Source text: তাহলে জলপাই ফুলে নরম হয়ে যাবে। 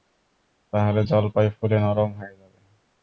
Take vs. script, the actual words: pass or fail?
pass